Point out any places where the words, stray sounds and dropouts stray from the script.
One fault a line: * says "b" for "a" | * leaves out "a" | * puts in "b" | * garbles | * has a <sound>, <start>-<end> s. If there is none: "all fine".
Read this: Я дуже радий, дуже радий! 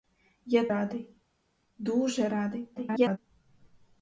* leaves out "дуже"
* garbles